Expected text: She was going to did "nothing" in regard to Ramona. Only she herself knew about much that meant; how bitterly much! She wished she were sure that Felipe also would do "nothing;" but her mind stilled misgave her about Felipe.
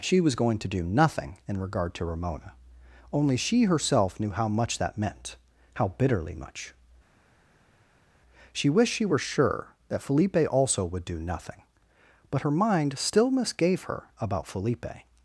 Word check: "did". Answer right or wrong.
wrong